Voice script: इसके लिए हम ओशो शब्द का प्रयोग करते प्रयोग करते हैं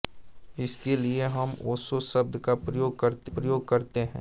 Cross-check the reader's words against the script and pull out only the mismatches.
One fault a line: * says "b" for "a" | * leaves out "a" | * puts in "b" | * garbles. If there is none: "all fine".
all fine